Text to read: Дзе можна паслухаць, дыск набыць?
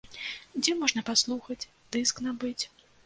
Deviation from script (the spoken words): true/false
false